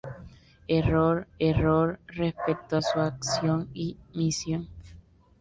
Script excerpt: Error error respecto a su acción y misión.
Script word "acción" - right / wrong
right